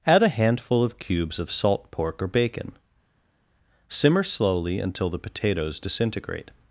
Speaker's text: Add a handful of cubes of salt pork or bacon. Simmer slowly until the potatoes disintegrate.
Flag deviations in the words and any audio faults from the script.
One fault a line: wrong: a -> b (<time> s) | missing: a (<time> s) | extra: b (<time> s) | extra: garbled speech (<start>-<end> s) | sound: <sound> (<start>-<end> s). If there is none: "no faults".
no faults